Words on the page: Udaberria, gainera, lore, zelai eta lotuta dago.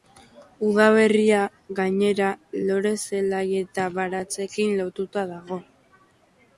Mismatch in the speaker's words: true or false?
true